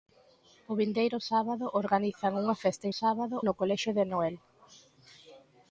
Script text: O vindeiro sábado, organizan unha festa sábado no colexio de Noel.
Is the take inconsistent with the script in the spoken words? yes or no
no